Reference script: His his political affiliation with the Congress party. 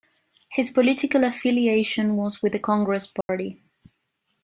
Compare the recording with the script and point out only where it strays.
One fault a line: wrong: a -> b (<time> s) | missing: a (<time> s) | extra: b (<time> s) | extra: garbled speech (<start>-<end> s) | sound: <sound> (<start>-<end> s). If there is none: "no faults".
missing: his (0.7 s)
extra: was (2.1 s)
sound: dropout (3.2-3.3 s)